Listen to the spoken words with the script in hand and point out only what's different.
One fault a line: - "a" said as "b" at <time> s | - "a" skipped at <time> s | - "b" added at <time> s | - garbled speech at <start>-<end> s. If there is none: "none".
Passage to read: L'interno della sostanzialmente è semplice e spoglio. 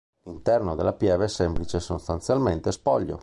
- "sostanzialmente" said as "pieve" at 0.9 s
- "sostanzialmente" added at 1.8 s